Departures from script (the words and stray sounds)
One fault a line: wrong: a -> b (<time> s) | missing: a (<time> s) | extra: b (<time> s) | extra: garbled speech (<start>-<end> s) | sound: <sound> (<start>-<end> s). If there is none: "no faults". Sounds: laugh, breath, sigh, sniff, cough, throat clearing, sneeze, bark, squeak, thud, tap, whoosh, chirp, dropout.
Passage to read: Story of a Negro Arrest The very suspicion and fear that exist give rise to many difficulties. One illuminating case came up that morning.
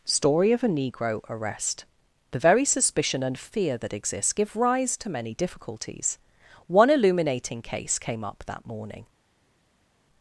wrong: exist -> exists (3.9 s)